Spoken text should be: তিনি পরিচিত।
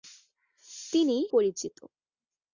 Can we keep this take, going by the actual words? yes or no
yes